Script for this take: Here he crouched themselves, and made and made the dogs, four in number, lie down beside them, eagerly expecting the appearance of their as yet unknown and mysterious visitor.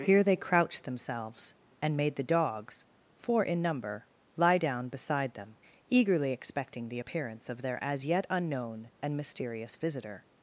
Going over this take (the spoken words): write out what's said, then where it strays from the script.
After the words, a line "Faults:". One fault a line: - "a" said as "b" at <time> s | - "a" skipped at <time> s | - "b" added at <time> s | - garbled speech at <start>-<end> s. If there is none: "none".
Here they crouched themselves, and made the dogs, four in number, lie down beside them, eagerly expecting the appearance of their as yet unknown and mysterious visitor.
Faults:
- "he" said as "they" at 0.2 s
- "and made" skipped at 2.1 s